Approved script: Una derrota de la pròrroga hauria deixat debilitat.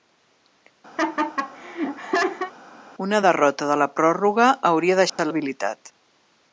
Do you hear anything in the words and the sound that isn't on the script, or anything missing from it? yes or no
yes